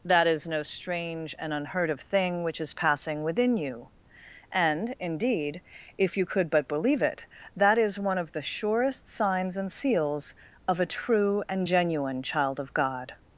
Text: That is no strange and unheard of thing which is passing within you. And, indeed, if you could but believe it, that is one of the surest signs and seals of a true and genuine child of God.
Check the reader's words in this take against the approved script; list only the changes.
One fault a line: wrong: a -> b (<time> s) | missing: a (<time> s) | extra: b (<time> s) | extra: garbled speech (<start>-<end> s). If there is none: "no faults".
no faults